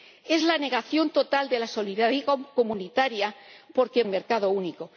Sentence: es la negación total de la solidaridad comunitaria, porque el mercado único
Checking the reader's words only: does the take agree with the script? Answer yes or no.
yes